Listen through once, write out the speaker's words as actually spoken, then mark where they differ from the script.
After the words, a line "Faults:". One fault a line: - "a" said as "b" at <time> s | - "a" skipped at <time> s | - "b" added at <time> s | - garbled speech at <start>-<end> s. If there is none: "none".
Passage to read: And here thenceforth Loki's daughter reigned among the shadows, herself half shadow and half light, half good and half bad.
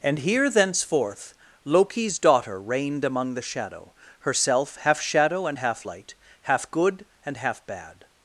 And here thenceforth Loki's daughter reigned among the shadow, herself half shadow and half light, half good and half bad.
Faults:
- "shadows" said as "shadow" at 3.4 s